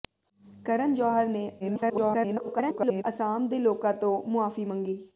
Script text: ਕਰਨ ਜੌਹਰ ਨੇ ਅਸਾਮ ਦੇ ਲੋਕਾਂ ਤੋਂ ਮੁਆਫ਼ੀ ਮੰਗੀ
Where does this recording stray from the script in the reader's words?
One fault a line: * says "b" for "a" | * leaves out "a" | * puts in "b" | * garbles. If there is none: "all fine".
* garbles